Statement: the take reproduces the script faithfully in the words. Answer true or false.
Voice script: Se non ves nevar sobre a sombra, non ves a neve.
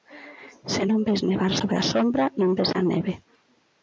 true